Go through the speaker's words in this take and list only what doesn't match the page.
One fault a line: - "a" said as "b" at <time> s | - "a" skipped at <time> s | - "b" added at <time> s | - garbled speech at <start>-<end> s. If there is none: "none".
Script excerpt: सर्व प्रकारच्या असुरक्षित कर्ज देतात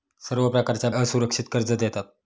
none